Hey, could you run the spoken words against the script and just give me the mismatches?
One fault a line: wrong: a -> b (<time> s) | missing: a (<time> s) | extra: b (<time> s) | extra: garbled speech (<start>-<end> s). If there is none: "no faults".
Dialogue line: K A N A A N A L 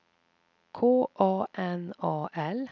missing: A N A (2.3 s)